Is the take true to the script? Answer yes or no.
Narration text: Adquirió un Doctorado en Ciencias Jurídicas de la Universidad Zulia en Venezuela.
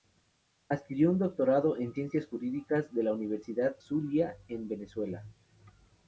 yes